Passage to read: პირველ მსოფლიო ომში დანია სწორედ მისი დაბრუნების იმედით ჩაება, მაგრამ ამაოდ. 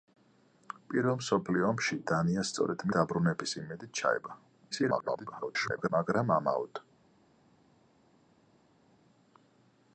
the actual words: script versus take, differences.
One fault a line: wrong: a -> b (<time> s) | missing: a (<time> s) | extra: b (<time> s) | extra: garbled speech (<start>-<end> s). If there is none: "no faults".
missing: მისი (2.9 s)
extra: garbled speech (4.7-5.9 s)